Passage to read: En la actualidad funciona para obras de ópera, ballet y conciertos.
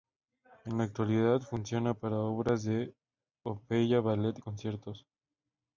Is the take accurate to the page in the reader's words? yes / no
yes